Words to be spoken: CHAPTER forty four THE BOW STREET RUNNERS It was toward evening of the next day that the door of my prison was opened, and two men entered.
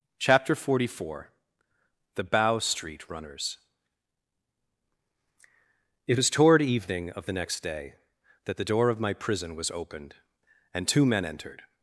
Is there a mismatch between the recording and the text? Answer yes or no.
no